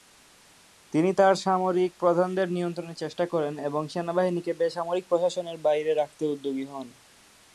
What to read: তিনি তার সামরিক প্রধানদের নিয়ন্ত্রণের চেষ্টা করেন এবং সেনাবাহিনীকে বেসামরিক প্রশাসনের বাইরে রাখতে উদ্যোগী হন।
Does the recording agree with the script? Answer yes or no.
yes